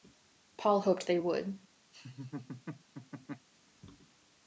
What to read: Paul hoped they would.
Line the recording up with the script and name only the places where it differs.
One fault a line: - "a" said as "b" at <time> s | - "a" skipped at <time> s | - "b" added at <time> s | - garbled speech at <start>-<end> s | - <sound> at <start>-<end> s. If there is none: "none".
- laugh at 1.9-3.5 s